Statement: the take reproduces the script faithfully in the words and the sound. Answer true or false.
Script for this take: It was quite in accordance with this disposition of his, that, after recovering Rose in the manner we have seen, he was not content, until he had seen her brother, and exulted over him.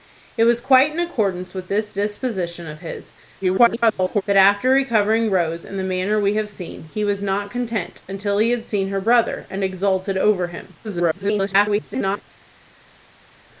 false